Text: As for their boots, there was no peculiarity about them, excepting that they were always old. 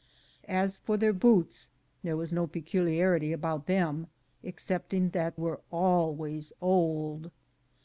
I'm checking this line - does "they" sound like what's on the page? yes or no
no